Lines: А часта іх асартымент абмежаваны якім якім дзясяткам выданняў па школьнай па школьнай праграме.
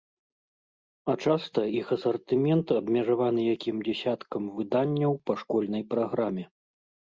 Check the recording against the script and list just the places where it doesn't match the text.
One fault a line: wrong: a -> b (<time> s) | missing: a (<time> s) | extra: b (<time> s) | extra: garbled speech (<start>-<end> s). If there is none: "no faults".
missing: якім (3.8 s)
missing: па школьнай (5.8 s)